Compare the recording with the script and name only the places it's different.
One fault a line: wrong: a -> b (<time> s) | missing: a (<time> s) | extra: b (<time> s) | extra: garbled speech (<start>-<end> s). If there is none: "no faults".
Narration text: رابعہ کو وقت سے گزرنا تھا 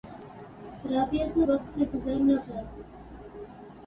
no faults